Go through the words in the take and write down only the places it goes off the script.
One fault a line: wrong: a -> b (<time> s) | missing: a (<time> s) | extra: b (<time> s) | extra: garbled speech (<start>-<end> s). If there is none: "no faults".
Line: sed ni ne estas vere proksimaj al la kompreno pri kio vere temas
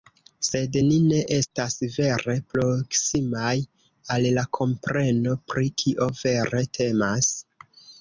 no faults